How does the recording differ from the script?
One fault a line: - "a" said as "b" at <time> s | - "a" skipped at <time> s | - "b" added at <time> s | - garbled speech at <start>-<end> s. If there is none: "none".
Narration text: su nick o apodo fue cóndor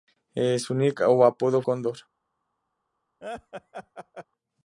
- "fue" skipped at 1.6 s